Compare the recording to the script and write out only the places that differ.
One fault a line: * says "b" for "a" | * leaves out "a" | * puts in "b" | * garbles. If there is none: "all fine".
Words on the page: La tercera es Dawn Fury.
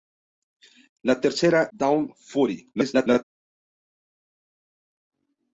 * leaves out "es"
* garbles